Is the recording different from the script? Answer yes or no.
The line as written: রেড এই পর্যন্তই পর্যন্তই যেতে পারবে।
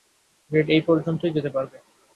yes